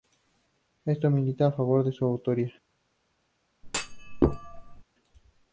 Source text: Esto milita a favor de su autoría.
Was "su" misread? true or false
false